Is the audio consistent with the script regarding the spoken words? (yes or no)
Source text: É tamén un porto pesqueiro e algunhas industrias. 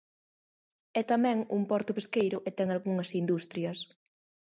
no